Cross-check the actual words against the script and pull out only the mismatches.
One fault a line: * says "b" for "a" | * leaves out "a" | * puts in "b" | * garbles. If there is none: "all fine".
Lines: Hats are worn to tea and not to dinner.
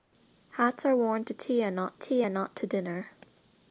* puts in "tea and not"